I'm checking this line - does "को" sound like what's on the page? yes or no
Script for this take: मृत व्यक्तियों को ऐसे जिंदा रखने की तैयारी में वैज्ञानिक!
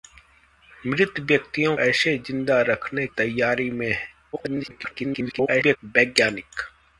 no